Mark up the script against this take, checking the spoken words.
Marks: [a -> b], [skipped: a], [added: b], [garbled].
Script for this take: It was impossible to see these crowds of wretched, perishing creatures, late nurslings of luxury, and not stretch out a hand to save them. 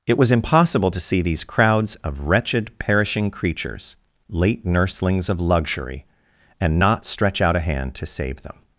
It was impossible to see these crowds of wretched, perishing creatures, late nurslings of luxury, and not stretch out a hand to save them.